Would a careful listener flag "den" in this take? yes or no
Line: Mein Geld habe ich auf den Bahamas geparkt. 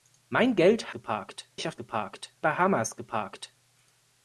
yes